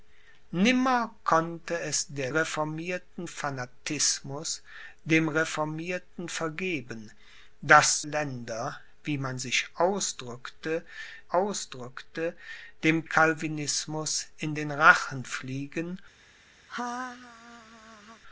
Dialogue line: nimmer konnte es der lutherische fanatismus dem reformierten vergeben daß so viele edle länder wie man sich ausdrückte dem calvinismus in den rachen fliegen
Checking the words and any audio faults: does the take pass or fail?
fail